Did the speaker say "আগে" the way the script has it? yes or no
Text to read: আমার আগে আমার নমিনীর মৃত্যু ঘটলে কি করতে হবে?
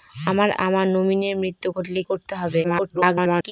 no